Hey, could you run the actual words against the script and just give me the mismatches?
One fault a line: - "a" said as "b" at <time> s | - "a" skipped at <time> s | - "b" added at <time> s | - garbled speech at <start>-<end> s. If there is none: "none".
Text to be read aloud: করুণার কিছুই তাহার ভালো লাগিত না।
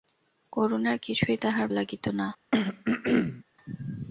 - "ভালো" skipped at 1.7 s